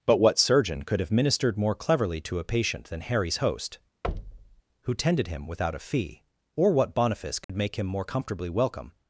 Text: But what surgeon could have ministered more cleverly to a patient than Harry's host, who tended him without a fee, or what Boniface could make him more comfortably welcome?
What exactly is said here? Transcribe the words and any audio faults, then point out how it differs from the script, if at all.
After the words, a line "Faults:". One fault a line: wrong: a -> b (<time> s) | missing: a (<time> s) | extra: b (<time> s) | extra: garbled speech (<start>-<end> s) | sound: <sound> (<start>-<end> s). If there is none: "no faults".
But what surgeon could have ministered more cleverly to a patient than Harry's host, who tended him without a fee, or what Boniface could make him more comfortably welcome?
Faults:
sound: thud (4.0-4.6 s)
sound: dropout (7.4-7.5 s)